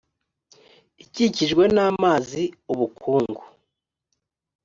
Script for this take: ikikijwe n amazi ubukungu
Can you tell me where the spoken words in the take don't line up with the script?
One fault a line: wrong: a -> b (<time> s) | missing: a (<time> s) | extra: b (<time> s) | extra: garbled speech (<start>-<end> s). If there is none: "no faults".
no faults